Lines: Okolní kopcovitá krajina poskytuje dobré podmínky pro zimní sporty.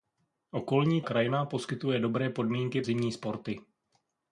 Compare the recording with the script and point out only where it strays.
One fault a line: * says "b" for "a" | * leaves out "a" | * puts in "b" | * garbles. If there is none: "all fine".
* leaves out "kopcovitá"
* leaves out "pro"